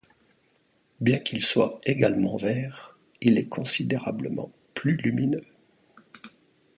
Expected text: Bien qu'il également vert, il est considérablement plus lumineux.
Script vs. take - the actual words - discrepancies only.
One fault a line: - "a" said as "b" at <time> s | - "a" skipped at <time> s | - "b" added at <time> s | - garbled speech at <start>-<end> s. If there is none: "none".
- "soit" added at 1.4 s